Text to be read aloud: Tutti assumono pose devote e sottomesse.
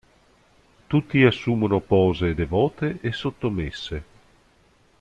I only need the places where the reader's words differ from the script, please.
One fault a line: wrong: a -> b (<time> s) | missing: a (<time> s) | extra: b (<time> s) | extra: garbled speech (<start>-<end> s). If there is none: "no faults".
no faults